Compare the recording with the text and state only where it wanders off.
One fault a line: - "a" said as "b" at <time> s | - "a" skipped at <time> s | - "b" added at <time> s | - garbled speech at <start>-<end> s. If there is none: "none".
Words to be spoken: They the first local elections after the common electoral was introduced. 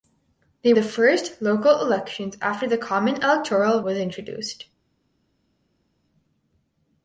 none